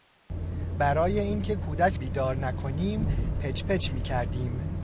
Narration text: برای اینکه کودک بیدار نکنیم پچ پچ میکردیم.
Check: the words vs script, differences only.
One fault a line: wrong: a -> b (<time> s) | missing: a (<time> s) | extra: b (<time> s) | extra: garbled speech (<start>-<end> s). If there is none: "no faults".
no faults